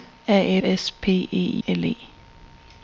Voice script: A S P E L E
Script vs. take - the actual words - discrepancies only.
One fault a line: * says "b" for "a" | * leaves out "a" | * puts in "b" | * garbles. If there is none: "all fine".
all fine